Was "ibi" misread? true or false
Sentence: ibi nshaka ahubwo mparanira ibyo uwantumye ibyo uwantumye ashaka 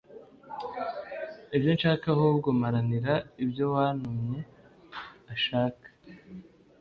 true